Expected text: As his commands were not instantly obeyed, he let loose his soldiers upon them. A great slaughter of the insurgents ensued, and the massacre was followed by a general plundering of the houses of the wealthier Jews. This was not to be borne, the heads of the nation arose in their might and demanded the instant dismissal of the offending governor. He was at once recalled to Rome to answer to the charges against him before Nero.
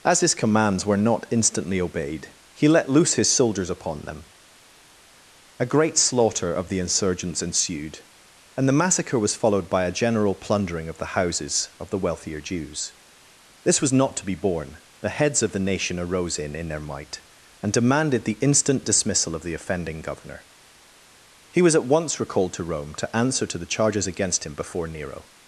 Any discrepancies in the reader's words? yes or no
yes